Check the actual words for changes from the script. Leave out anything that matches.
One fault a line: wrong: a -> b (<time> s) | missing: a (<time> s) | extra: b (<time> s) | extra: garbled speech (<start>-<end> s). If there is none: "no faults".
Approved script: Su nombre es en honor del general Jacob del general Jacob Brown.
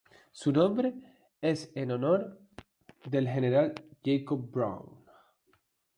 missing: del general Jacob (4.5 s)